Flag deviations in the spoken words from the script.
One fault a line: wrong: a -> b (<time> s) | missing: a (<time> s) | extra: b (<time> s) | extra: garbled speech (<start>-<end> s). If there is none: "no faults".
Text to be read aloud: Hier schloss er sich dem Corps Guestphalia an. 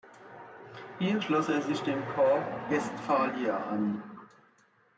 no faults